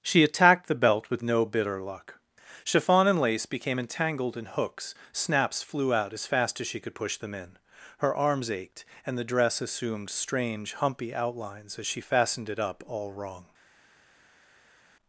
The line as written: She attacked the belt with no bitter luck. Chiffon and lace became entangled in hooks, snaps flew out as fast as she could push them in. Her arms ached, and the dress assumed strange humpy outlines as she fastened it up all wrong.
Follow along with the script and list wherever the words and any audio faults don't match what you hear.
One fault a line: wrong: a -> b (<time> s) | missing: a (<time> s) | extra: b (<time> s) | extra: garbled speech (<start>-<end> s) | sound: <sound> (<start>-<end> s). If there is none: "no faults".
no faults